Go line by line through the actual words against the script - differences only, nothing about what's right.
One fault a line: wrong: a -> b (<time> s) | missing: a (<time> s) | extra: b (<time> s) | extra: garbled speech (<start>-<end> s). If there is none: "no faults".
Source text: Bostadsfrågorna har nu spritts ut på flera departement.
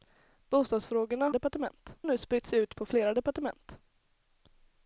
wrong: har -> departement (1.3 s)